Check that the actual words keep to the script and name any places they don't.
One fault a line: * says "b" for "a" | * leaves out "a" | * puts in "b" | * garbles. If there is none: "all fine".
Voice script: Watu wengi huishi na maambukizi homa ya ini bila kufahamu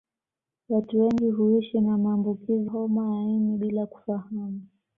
all fine